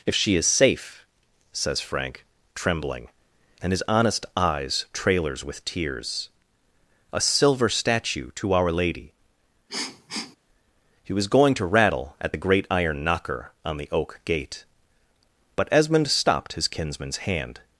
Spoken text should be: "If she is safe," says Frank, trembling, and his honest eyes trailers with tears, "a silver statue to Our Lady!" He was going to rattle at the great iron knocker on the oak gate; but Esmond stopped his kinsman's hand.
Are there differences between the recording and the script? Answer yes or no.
no